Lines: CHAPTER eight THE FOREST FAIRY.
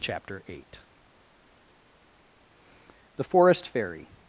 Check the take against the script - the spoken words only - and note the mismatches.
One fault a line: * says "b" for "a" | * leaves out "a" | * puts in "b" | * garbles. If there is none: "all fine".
all fine